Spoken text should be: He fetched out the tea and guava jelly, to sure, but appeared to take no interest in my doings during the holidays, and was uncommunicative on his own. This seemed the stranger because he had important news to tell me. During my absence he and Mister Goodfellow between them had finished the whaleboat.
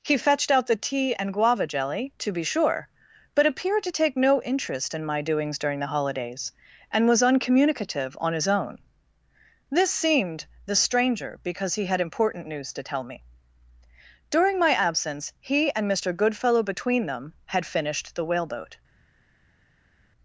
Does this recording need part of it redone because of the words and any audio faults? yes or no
yes